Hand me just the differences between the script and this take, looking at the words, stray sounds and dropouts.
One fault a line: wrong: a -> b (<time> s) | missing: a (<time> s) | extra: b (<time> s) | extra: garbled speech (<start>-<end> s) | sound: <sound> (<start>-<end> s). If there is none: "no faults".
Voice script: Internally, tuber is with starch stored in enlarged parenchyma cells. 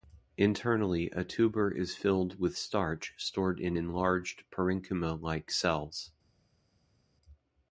extra: a (1.1 s)
extra: filled (1.9 s)
extra: like (5.2 s)